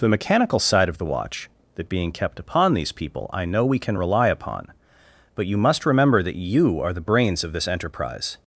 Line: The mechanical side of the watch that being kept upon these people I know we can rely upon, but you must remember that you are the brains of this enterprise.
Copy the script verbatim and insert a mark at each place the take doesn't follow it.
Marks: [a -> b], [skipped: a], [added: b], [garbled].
The mechanical side of the watch that being kept upon these people I know we can rely upon, but you must remember that you are the brains of this enterprise.